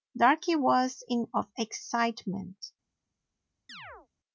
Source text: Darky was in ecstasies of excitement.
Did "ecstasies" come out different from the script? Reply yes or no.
yes